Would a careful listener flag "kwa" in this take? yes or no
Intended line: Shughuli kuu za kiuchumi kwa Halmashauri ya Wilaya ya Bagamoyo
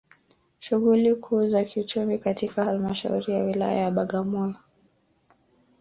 yes